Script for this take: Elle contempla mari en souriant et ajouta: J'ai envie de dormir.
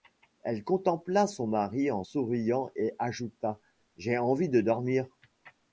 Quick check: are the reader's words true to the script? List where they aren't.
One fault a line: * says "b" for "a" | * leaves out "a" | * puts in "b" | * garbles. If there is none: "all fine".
* puts in "son"